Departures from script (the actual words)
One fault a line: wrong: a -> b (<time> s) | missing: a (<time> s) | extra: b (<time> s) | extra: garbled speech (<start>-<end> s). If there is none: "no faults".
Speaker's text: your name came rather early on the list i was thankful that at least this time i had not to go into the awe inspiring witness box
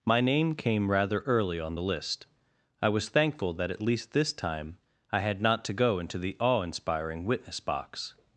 wrong: your -> my (0.0 s)